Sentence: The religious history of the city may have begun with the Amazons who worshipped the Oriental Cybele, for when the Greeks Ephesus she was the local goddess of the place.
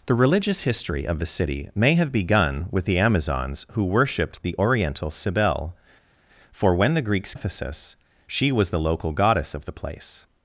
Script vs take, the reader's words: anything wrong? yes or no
no